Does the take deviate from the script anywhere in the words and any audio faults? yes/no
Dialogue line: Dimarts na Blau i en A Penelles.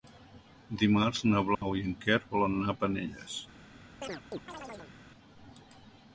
yes